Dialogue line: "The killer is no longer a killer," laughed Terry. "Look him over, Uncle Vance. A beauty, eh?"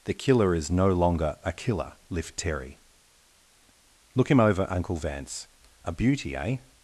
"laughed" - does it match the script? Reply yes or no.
no